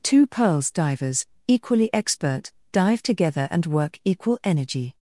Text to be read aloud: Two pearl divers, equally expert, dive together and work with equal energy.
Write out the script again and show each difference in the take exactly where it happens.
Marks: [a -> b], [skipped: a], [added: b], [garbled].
Two [pearl -> pearls] divers, equally expert, dive together and work [skipped: with] equal energy.